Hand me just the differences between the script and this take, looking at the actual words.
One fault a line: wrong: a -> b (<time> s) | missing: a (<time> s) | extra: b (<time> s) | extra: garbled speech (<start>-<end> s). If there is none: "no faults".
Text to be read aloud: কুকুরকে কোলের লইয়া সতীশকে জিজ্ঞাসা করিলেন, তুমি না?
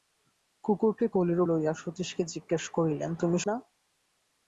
no faults